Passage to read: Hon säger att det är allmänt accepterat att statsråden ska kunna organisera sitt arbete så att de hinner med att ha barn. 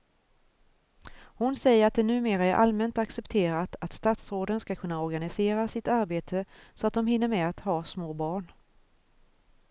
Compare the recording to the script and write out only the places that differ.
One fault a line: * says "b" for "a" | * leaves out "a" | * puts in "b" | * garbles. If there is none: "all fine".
* puts in "numera"
* puts in "små"